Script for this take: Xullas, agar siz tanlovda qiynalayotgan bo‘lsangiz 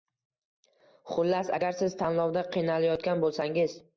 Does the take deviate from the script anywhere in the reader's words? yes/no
no